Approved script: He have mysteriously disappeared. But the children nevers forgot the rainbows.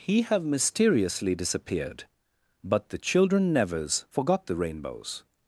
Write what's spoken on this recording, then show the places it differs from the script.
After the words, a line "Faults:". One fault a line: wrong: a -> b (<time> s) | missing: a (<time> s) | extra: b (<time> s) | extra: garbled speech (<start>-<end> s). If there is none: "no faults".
He have mysteriously disappeared. But the children nevers forgot the rainbows.
Faults:
no faults